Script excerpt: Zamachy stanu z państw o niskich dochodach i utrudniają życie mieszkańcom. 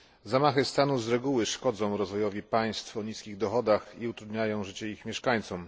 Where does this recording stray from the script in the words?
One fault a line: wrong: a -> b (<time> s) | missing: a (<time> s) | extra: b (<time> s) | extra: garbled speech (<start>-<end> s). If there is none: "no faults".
extra: reguły szkodzą rozwojowi (1.1 s)
extra: ich (4.9 s)